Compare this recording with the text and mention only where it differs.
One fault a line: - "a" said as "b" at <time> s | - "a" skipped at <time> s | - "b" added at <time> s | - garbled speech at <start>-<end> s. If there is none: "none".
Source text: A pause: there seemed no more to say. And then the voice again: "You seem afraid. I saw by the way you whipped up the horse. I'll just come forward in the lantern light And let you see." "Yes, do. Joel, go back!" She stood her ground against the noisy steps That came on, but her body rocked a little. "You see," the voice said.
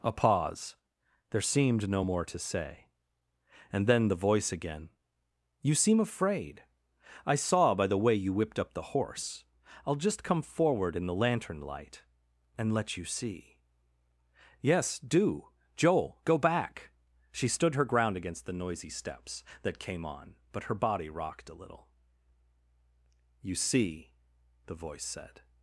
none